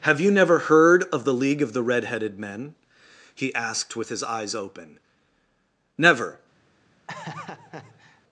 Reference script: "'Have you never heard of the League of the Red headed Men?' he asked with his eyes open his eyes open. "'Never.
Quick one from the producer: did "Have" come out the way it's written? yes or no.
yes